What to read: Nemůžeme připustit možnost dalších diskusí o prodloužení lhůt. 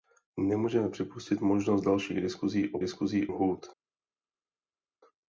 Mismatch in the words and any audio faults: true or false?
true